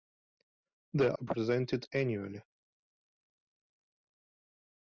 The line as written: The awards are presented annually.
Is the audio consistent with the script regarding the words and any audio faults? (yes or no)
no